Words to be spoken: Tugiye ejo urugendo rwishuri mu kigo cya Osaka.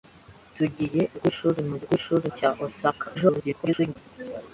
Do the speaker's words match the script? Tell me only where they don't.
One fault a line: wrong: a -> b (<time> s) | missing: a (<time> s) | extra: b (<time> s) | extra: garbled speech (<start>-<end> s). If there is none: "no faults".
missing: ejo urugendo (1.0 s)
wrong: kigo -> rwishuri (1.8 s)
extra: garbled speech (3.1-4.0 s)